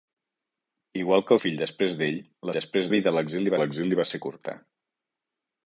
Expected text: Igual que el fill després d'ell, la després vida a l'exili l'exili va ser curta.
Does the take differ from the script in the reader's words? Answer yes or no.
no